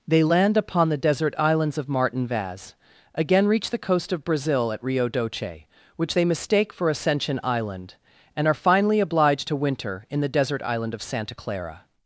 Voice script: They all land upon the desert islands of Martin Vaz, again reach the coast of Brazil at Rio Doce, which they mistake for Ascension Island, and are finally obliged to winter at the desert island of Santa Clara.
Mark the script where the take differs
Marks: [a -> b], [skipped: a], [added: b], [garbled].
They [skipped: all] land upon the desert islands of Martin Vaz, again reach the coast of Brazil at Rio Doce, which they mistake for Ascension Island, and are finally obliged to winter [at -> in] the desert island of Santa Clara.